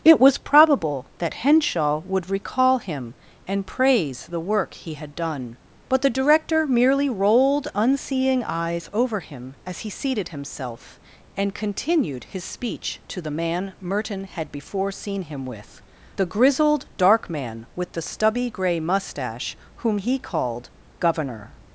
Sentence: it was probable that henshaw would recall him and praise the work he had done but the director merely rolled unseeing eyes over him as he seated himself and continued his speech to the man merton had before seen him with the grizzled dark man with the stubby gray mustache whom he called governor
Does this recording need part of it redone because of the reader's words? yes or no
no